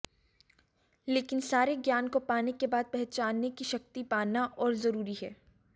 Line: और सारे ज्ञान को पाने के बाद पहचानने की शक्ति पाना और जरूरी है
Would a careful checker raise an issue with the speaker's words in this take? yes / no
yes